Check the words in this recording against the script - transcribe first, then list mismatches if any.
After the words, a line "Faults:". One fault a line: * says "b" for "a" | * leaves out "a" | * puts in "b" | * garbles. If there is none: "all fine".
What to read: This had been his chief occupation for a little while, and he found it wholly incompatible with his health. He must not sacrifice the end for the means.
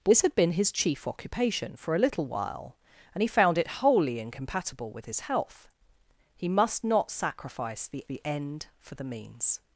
This had been his chief occupation for a little while, and he found it wholly incompatible with his health. He must not sacrifice the the end for the means.
Faults:
* puts in "the"